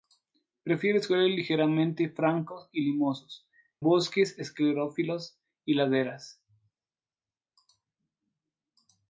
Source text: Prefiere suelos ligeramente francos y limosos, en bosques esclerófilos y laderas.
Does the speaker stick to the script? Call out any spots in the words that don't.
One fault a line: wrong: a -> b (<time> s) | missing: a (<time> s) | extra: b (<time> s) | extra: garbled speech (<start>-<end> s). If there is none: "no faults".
missing: en (3.5 s)